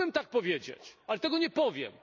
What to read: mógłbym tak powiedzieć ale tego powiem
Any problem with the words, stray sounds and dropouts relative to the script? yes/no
yes